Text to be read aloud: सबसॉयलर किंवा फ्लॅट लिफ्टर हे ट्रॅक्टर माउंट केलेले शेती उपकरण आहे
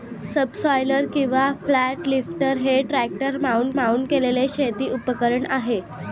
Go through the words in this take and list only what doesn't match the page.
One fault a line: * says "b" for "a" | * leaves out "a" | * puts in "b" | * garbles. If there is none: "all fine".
* puts in "माउंट"